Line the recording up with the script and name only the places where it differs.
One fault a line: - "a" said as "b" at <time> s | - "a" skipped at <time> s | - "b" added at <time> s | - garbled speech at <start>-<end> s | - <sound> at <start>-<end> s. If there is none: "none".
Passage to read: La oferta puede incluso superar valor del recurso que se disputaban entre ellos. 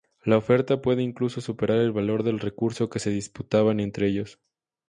- "el" added at 1.8 s